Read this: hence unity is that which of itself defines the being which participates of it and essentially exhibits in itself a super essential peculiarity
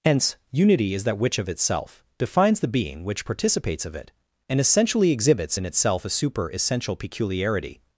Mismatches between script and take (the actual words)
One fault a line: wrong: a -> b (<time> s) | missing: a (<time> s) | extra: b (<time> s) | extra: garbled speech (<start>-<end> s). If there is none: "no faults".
no faults